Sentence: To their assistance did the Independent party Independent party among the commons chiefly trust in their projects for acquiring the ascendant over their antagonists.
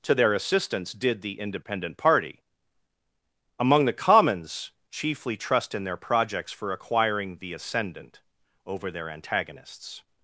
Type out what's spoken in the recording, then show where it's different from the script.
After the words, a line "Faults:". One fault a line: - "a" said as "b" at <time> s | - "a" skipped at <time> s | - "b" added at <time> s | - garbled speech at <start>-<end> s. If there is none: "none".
To their assistance did the Independent party among the commons chiefly trust in their projects for acquiring the ascendant over their antagonists.
Faults:
- "Independent party" skipped at 2.4 s